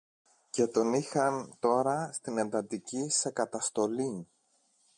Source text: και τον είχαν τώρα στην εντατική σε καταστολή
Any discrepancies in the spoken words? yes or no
no